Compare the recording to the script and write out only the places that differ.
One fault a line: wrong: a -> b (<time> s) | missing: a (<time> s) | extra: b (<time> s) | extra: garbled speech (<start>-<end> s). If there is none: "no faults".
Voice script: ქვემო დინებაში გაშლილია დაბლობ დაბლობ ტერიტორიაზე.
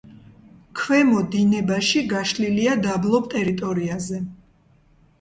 missing: დაბლობ (3.3 s)